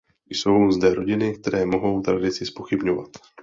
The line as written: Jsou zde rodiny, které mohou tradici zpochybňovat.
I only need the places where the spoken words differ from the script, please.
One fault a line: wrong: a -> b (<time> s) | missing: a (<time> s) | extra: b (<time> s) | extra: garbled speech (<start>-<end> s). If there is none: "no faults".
no faults